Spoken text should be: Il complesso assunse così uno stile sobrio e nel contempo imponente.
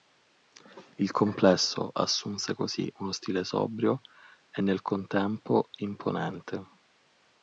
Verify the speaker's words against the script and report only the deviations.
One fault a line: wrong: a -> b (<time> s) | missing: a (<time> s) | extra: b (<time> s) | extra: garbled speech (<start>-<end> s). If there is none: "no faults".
no faults